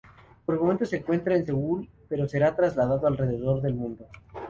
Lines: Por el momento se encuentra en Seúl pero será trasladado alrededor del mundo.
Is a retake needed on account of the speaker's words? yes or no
no